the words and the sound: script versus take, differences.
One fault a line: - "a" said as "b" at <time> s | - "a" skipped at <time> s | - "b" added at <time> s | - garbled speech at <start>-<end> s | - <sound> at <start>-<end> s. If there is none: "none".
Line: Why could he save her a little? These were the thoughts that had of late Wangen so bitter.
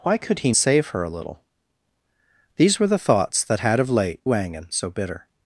none